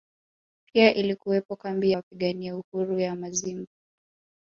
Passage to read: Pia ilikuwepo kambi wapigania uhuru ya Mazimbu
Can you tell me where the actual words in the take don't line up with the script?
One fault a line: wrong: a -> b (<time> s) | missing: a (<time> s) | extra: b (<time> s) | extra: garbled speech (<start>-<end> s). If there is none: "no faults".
no faults